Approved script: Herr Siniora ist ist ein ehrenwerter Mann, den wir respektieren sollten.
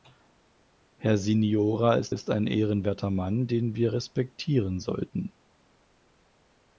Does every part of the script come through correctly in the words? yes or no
yes